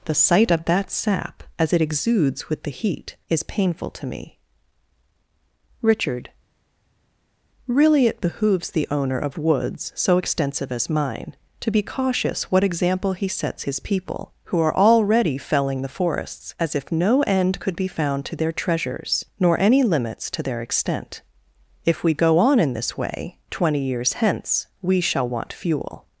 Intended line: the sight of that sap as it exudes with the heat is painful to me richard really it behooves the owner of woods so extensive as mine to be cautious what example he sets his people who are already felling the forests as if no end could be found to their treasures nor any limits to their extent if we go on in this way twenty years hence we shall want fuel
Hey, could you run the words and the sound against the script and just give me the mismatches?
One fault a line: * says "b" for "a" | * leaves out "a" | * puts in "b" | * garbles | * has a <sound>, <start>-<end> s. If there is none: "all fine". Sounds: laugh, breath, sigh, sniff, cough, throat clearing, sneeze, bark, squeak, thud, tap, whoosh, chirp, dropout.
all fine